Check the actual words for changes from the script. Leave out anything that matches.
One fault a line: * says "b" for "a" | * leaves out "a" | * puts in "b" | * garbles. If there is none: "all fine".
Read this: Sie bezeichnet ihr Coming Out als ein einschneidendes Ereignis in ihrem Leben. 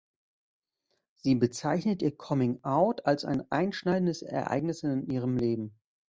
all fine